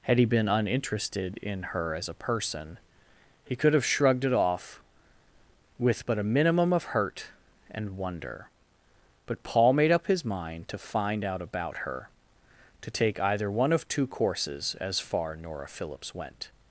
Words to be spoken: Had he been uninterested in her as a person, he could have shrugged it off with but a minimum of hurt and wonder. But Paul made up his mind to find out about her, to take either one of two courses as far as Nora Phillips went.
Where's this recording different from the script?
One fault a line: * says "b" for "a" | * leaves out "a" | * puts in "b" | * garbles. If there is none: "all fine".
* leaves out "as"